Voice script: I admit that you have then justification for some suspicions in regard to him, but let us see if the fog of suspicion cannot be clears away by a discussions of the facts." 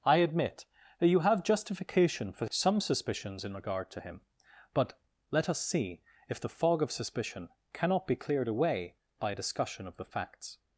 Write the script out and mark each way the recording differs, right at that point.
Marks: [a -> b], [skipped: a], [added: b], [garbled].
I admit that you have [skipped: then] justification for some suspicions in regard to him, but let us see if the fog of suspicion cannot be [clears -> cleared] away by a [discussions -> discussion] of the facts."